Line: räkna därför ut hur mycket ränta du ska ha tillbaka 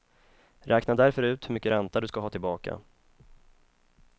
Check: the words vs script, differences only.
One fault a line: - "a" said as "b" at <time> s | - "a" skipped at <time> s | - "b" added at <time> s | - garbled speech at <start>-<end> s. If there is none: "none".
none